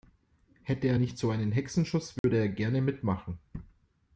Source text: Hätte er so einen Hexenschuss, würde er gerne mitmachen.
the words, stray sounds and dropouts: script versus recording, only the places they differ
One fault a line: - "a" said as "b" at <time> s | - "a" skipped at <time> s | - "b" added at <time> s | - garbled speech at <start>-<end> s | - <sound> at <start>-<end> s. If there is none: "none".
- "nicht" added at 0.9 s
- dropout at 2.2-2.2 s